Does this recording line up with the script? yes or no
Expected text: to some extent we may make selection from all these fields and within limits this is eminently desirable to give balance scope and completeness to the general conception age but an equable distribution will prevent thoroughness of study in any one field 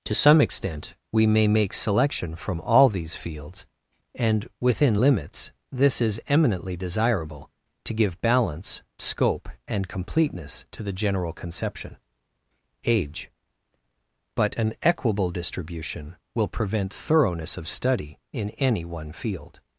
yes